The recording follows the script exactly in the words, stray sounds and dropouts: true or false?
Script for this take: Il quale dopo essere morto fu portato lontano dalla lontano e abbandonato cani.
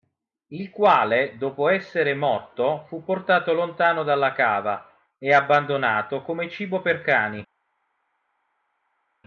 false